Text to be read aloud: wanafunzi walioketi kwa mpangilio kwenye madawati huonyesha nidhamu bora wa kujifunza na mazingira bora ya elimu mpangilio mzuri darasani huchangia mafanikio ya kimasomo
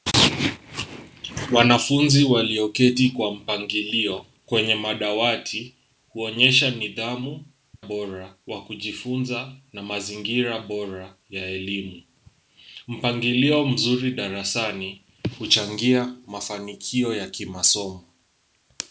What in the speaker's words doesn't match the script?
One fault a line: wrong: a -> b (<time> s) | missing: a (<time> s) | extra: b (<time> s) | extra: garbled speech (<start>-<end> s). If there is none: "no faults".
no faults